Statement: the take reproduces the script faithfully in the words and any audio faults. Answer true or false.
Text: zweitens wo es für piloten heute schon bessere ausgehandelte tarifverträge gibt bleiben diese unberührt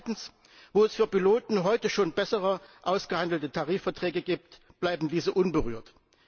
true